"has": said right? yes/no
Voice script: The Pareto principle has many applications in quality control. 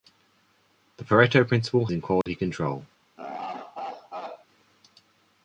no